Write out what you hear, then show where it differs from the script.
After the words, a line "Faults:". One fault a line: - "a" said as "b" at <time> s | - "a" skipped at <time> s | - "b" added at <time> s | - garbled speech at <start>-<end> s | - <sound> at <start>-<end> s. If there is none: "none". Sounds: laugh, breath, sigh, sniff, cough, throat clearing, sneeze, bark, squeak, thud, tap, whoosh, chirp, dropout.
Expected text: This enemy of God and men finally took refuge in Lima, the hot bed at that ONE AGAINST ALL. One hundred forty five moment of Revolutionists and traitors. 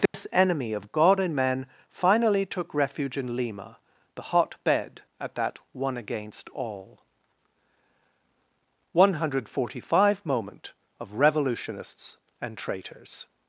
This enemy of God and men finally took refuge in Lima, the hot bed at that ONE AGAINST ALL. One hundred forty five moment of Revolutionists and traitors.
Faults:
- dropout at 0.1-0.1 s